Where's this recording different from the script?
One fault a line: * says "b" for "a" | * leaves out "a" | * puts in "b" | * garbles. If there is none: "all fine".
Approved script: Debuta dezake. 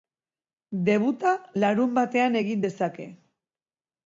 * puts in "larunbatean egin"